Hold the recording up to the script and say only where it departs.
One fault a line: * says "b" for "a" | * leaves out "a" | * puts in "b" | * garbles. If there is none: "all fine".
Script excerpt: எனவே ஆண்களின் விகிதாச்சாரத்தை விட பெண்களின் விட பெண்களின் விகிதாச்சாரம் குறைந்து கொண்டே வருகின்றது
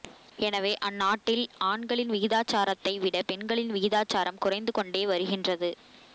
* puts in "அந்நாட்டில்"
* leaves out "விட பெண்களின்"